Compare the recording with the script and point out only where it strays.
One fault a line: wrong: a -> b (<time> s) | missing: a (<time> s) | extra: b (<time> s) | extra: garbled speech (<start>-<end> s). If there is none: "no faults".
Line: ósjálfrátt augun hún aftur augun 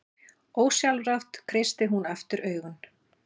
wrong: augun -> kreistir (1.5 s)